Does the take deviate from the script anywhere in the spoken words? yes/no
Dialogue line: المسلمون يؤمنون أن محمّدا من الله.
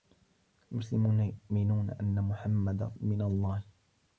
no